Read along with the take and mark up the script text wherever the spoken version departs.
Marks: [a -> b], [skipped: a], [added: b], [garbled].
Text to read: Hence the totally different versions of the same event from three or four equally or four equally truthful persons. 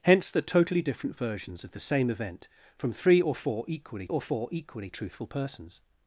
Hence the totally different versions of the same event from three or four equally or four equally truthful persons.